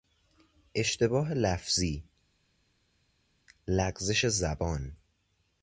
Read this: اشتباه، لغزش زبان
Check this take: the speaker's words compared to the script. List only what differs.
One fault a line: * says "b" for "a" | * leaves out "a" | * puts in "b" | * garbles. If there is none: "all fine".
* puts in "لفظی"